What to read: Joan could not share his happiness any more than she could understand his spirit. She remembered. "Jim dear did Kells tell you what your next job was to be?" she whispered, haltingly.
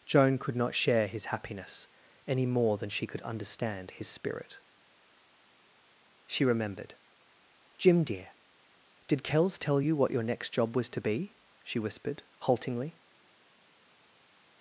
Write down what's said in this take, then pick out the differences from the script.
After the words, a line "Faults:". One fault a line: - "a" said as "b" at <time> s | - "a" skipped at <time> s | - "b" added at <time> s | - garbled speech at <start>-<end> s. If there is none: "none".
Joan could not share his happiness any more than she could understand his spirit. She remembered. "Jim dear did Kells tell you what your next job was to be?" she whispered, haltingly.
Faults:
none